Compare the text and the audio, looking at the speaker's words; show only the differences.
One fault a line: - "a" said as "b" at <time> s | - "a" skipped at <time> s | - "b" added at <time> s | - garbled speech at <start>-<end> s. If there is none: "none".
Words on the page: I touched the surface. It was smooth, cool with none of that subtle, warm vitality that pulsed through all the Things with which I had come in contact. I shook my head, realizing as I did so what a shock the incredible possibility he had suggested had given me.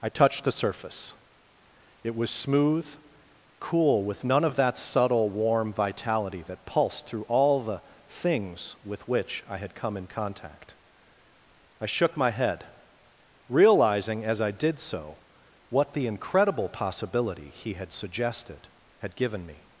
- "a shock" skipped at 15.9 s